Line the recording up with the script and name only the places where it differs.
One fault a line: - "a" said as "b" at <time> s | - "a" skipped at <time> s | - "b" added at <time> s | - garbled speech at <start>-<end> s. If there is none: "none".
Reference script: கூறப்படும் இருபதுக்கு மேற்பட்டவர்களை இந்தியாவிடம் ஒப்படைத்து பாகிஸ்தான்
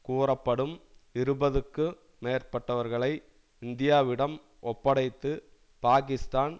none